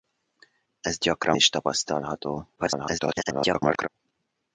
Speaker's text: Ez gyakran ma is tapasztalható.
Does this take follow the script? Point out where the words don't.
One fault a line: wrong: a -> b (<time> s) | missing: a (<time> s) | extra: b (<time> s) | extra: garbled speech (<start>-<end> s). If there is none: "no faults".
missing: ma (1.4 s)
extra: garbled speech (2.6-3.9 s)